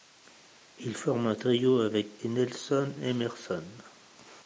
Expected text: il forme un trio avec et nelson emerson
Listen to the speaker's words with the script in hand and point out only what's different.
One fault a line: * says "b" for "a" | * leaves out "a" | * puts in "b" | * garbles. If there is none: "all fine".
all fine